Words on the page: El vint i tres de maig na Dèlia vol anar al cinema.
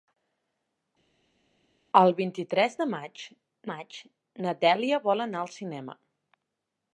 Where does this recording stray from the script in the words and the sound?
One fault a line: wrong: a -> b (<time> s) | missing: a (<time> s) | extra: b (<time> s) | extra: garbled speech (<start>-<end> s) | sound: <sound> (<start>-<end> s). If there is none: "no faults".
extra: maig (3.7 s)